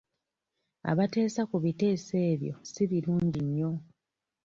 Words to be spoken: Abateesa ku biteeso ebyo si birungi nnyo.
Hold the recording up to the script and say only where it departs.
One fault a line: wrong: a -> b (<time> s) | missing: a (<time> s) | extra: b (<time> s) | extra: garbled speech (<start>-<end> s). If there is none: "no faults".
no faults